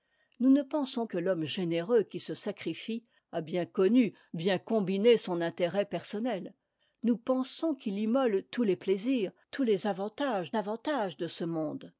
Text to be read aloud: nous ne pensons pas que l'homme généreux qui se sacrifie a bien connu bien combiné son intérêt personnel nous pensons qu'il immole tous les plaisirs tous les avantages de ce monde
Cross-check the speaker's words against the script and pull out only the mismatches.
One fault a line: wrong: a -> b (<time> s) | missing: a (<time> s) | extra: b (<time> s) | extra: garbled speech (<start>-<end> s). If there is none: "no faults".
missing: pas (1.1 s)
extra: avantages (10.6 s)